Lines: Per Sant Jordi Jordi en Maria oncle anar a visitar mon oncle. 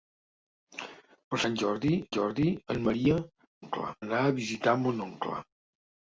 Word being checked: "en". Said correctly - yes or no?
yes